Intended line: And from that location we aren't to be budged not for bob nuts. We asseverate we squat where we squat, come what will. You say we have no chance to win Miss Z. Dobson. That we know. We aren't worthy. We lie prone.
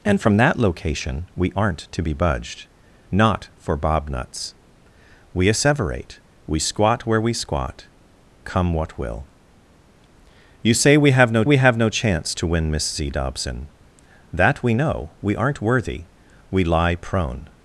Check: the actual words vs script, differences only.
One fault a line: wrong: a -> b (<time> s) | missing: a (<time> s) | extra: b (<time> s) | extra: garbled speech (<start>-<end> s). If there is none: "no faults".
extra: we have no (11.4 s)